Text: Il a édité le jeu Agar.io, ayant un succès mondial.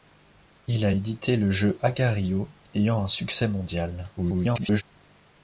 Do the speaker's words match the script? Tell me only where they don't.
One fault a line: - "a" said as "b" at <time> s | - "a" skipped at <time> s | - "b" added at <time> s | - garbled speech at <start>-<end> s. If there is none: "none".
- garbled speech at 4.2-4.8 s